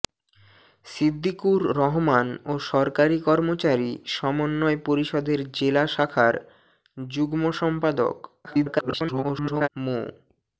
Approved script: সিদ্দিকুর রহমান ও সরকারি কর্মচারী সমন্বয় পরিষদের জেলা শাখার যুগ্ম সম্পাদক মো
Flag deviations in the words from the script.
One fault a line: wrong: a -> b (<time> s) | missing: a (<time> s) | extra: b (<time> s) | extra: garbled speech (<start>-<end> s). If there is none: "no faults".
extra: garbled speech (8.4-9.7 s)